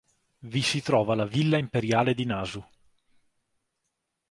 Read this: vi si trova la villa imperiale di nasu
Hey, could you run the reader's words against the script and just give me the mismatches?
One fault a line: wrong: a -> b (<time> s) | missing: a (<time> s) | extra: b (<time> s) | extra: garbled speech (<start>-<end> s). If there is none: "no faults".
no faults